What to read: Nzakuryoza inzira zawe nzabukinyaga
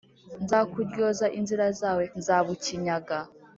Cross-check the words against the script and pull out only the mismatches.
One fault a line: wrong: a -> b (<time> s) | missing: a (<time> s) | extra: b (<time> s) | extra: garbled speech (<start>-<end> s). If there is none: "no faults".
no faults